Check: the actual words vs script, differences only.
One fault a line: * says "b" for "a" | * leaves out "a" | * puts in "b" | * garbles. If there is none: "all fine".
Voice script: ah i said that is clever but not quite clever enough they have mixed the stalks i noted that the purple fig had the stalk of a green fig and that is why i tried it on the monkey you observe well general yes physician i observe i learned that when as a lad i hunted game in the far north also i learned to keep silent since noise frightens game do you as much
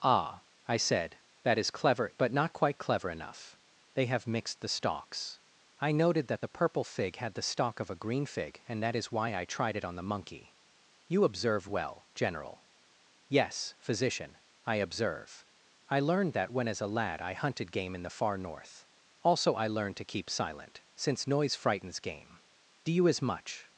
all fine